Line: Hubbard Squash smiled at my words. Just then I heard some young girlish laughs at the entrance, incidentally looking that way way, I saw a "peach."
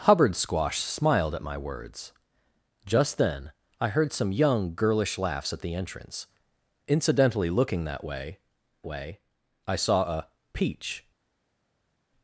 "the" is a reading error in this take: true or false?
false